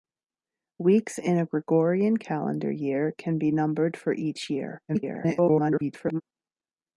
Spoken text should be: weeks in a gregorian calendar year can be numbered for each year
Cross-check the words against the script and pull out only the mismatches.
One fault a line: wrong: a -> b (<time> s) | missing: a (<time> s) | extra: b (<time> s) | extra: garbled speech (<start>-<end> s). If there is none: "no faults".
extra: garbled speech (4.9-6.2 s)